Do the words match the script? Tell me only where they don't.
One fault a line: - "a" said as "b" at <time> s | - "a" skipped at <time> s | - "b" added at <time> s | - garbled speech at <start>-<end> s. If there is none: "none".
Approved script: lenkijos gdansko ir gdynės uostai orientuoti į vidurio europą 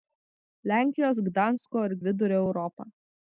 - "gdynės uostai orientuoti" skipped at 1.9 s